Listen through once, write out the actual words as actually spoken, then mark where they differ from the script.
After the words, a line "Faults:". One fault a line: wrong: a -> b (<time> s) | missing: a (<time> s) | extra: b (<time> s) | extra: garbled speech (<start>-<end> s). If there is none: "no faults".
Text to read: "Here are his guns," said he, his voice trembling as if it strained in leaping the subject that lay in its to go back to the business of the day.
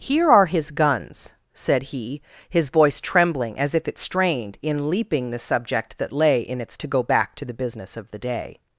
"Here are his guns," said he, his voice trembling as if it strained in leaping the subject that lay in its to go back to the business of the day.
Faults:
no faults